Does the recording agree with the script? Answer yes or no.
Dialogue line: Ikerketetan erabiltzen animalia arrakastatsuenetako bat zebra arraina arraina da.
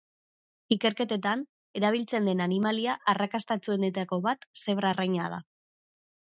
no